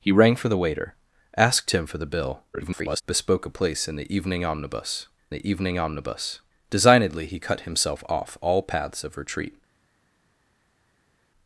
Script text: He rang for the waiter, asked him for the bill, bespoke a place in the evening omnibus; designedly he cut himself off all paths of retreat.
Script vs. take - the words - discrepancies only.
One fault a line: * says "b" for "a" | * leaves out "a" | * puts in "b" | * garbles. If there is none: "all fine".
* garbles
* puts in "the evening omnibus"